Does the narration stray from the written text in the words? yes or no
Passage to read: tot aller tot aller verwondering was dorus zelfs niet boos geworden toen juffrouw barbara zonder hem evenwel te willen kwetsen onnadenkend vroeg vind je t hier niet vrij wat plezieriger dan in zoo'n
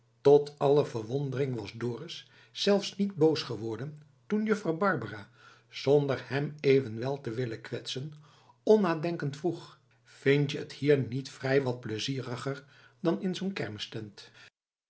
yes